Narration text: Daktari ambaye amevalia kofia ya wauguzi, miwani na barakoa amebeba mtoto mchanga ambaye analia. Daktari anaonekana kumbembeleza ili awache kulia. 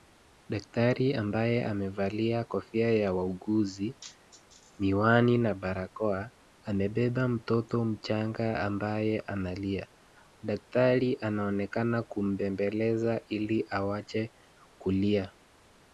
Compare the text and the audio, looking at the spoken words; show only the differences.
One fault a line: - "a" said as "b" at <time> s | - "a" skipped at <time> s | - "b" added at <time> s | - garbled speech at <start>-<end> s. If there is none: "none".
none